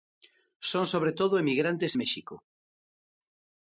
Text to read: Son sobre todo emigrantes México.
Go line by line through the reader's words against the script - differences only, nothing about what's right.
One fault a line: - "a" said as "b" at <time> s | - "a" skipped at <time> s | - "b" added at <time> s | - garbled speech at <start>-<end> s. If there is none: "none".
none